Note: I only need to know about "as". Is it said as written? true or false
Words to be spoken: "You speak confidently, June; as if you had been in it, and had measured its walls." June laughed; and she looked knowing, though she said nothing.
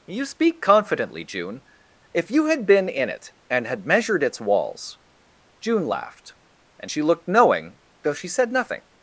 false